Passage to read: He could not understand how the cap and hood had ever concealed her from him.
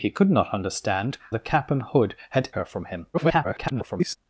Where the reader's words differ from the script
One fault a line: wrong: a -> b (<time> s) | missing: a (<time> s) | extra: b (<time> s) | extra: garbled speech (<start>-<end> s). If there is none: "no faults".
missing: how (1.2 s)
missing: ever concealed (2.5 s)
extra: garbled speech (3.1-4.2 s)